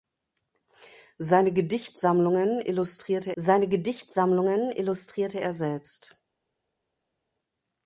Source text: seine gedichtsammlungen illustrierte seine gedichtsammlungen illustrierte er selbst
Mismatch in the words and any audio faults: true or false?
false